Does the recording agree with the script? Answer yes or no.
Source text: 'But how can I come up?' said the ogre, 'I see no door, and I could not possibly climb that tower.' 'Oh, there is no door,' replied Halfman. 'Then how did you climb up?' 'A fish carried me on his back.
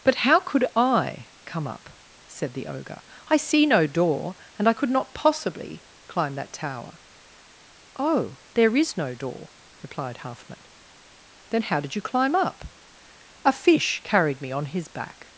no